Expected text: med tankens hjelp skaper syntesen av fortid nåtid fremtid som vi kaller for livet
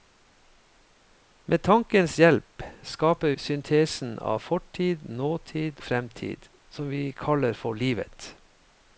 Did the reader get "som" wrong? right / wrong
right